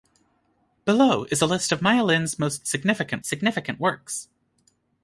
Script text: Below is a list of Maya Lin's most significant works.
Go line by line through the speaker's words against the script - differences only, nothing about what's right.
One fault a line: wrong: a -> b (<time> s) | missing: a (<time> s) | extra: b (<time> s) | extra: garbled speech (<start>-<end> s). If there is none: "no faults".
extra: significant (3.2 s)